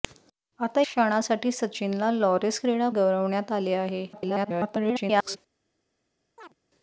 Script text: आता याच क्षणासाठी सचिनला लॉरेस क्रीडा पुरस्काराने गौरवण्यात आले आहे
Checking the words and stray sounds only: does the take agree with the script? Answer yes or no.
no